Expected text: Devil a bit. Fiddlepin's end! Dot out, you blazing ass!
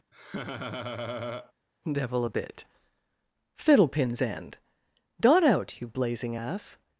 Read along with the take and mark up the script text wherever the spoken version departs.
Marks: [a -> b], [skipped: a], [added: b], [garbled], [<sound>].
[laugh] Devil a bit. Fiddlepin's end! Dot out, you blazing ass!